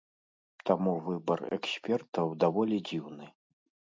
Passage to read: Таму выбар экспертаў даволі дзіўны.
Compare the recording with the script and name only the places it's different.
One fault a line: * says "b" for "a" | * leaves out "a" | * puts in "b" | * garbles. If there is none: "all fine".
all fine